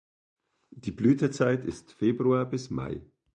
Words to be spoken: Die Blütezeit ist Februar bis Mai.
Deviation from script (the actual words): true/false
false